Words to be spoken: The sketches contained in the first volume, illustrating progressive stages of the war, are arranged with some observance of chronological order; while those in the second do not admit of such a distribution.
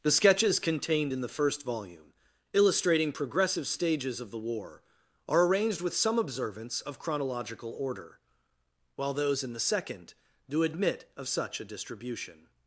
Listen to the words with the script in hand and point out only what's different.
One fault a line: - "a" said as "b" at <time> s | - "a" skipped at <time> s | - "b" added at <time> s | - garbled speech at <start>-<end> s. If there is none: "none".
- "not" skipped at 10.6 s